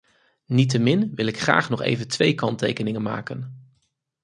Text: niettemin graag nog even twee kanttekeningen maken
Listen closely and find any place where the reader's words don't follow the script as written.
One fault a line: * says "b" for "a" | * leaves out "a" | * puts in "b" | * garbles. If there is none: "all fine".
* puts in "wil ik"